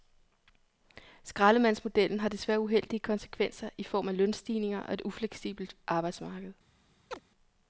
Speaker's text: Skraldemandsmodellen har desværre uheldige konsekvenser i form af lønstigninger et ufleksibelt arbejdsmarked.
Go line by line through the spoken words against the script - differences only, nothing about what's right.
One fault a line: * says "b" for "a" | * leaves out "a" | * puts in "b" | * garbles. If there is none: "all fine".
* puts in "og"